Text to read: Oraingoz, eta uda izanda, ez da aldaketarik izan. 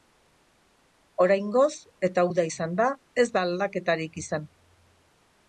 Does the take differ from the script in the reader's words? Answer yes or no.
no